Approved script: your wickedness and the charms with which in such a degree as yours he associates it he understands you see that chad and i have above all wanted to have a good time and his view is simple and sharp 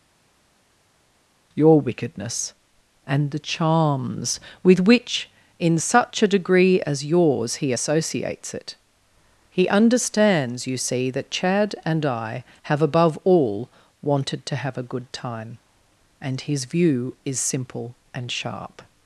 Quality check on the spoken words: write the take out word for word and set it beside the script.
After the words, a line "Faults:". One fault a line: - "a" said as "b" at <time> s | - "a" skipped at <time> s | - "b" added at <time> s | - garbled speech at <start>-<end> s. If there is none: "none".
your wickedness and the charms with which in such a degree as yours he associates it he understands you see that chad and i have above all wanted to have a good time and his view is simple and sharp
Faults:
none